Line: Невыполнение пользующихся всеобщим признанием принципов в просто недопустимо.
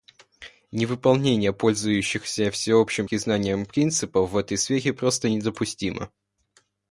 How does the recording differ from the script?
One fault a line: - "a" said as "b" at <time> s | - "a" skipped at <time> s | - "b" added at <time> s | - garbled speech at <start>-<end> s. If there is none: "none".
- "этой сфере" added at 4.4 s